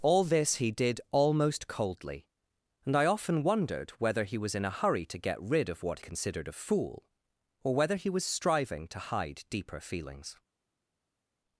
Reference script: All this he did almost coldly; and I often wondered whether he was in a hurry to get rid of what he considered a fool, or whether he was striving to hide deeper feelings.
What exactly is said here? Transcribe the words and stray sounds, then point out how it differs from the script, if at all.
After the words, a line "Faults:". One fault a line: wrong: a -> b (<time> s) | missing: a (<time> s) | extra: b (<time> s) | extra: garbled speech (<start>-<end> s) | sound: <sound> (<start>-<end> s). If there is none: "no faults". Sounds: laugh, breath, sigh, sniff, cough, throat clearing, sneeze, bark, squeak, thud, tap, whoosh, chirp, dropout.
All this he did almost coldly; and I often wondered whether he was in a hurry to get rid of what considered a fool, or whether he was striving to hide deeper feelings.
Faults:
missing: he (6.0 s)